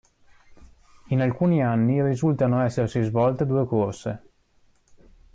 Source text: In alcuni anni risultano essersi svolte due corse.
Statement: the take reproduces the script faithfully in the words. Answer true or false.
true